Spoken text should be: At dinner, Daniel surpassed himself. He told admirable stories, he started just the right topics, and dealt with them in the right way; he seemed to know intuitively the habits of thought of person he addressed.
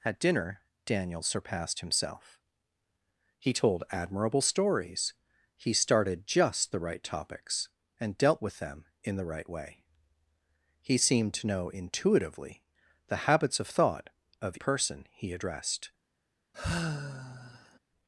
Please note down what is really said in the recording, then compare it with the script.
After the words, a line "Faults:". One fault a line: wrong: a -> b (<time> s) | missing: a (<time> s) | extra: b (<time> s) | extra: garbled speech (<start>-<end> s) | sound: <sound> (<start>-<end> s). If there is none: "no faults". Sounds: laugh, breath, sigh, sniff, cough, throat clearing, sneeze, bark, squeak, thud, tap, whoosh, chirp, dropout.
At dinner, Daniel surpassed himself. He told admirable stories, he started just the right topics, and dealt with them in the right way; he seemed to know intuitively the habits of thought of person he addressed.
Faults:
sound: sigh (16.5-17.8 s)